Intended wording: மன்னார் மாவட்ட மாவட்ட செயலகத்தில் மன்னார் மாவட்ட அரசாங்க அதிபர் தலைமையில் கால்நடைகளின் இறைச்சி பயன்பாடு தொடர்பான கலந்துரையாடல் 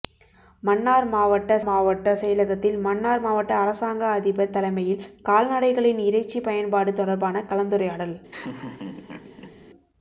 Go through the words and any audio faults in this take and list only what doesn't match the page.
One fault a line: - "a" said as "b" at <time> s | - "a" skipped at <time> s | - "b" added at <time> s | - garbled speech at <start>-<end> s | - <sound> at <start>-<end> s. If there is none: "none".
- laugh at 8.3-9.6 s